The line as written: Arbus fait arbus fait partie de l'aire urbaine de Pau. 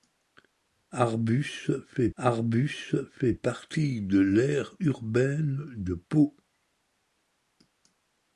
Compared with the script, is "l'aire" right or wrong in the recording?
right